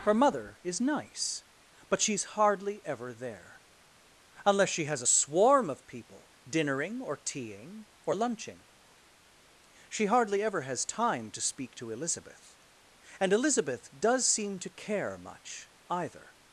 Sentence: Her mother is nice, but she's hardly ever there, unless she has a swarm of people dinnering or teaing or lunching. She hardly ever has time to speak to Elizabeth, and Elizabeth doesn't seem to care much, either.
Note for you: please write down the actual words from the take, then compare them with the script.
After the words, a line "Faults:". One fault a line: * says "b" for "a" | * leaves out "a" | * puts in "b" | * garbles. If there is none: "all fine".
Her mother is nice, but she's hardly ever there, unless she has a swarm of people dinnering or teaing or lunching. She hardly ever has time to speak to Elizabeth, and Elizabeth does seem to care much, either.
Faults:
* says "does" for "doesn't"